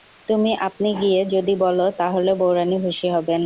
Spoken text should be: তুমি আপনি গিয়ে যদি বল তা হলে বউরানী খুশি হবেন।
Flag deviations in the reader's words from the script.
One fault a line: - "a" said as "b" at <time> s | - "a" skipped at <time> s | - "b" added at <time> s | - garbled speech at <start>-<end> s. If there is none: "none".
none